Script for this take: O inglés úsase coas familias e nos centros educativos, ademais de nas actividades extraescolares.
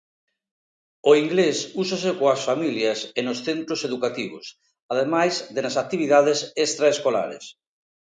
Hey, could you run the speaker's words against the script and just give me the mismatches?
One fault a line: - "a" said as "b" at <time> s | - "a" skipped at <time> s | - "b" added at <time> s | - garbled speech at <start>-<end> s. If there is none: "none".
none